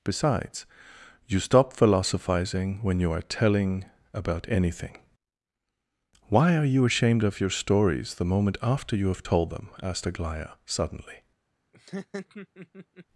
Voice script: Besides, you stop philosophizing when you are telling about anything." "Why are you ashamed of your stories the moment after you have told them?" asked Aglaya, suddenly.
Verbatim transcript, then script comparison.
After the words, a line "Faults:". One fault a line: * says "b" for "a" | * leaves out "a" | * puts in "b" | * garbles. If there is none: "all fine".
Besides, you stop philosophizing when you are telling about anything." "Why are you ashamed of your stories the moment after you have told them?" asked Aglaya, suddenly.
Faults:
all fine